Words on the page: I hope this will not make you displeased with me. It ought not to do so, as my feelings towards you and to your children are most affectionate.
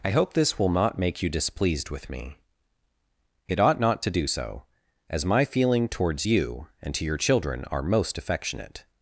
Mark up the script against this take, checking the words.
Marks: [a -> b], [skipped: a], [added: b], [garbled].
I hope this will not make you displeased with me. It ought not to do so, as my [feelings -> feeling] towards you and to your children are most affectionate.